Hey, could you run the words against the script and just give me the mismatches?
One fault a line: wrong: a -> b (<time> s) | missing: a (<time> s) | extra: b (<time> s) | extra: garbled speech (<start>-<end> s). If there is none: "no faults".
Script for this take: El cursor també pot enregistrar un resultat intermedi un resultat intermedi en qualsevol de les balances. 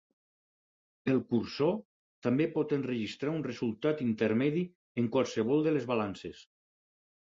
missing: un resultat intermedi (4.7 s)